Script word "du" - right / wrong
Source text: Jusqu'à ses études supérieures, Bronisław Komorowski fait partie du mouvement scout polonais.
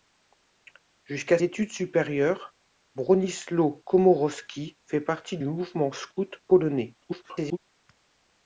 wrong